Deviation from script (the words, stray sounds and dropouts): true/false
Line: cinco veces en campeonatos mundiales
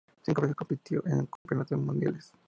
true